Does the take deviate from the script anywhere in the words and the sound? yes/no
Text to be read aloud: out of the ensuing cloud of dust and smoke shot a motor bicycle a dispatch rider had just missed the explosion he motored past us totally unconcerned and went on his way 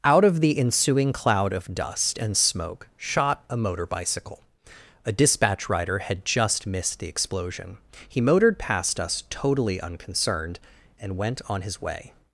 no